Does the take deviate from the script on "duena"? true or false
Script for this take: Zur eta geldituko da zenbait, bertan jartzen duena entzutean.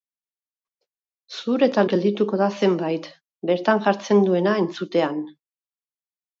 false